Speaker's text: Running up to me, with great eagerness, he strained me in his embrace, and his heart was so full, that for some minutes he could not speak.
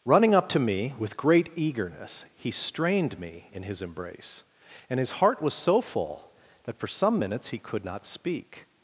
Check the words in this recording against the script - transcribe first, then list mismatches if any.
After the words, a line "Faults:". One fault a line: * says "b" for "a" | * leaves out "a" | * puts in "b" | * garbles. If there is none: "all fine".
Running up to me, with great eagerness, he strained me in his embrace, and his heart was so full, that for some minutes he could not speak.
Faults:
all fine